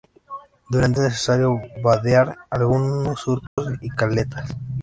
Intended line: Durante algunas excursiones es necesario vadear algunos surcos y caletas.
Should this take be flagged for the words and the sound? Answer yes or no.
yes